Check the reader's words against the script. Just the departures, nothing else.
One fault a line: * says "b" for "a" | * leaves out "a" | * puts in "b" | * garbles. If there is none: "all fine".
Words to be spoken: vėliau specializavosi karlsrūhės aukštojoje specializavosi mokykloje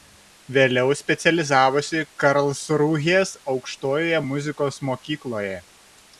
* says "muzikos" for "specializavosi"